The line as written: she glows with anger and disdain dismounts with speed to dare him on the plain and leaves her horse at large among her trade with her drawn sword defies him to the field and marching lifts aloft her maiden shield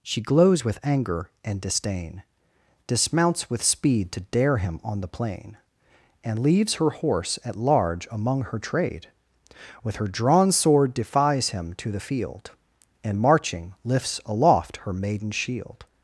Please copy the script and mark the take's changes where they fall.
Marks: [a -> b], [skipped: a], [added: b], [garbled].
she glows with anger and disdain dismounts with speed to dare him on the plain and leaves her horse at large among her trade with her drawn sword defies him to the field and marching lifts aloft her maiden shield